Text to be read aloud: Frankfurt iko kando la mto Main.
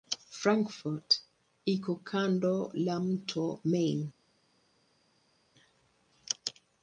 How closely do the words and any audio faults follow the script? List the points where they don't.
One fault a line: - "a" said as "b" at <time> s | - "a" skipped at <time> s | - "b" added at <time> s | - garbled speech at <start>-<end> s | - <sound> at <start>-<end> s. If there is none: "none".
none